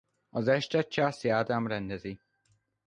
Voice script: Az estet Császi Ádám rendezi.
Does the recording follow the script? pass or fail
pass